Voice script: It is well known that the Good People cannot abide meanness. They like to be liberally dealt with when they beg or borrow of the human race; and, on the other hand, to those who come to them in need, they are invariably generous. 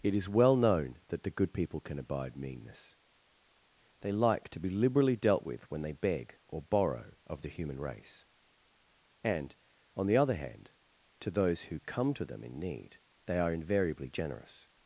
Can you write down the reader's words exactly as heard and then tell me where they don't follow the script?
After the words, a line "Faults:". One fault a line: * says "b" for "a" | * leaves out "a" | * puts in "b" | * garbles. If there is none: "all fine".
It is well known that the Good People can abide meanness. They like to be liberally dealt with when they beg or borrow of the human race; and, on the other hand, to those who come to them in need, they are invariably generous.
Faults:
* says "can" for "cannot"